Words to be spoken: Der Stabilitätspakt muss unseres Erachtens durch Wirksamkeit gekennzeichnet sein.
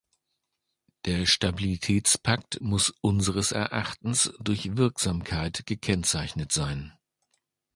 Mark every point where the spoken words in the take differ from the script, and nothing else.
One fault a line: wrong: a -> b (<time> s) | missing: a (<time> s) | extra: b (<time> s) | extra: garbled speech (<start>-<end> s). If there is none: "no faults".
no faults